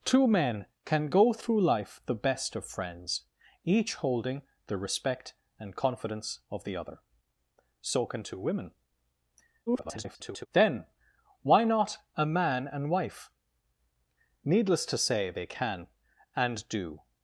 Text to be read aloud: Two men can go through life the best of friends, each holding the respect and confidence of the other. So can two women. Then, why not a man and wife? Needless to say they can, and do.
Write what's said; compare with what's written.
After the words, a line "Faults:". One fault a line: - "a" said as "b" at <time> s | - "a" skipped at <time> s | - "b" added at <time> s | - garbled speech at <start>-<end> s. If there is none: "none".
Two men can go through life the best of friends, each holding the respect and confidence of the other. So can two women. [garbled] Then, why not a man and wife? Needless to say they can, and do.
Faults:
- garbled speech at 9.7-10.5 s